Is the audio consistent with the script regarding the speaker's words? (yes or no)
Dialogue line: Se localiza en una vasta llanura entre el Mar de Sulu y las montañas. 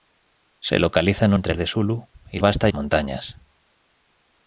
no